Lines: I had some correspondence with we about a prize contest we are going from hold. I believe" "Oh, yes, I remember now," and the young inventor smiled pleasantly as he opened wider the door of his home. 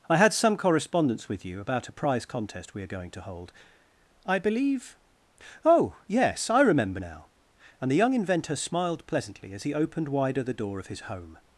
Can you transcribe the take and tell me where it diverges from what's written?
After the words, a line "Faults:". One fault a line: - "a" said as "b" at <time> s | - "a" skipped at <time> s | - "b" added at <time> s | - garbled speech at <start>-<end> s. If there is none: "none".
I had some correspondence with you about a prize contest we are going to hold. I believe" "Oh, yes, I remember now," and the young inventor smiled pleasantly as he opened wider the door of his home.
Faults:
- "we" said as "you" at 1.4 s
- "from" said as "to" at 3.1 s